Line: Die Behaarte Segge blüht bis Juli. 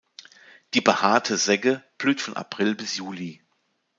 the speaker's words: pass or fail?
fail